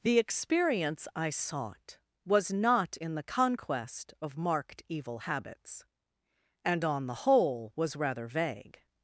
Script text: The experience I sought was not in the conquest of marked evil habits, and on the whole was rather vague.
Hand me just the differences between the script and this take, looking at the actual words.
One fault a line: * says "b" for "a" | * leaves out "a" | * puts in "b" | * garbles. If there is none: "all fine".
all fine